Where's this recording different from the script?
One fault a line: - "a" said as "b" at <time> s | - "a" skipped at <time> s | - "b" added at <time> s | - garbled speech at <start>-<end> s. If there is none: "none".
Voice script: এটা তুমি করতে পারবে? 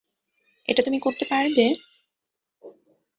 none